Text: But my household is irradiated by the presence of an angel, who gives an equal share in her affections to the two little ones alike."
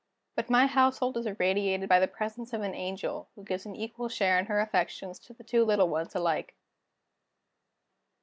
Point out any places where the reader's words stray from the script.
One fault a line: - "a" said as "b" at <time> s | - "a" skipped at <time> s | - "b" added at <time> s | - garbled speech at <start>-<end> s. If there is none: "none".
none